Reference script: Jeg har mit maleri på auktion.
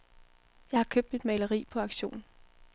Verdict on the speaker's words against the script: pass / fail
fail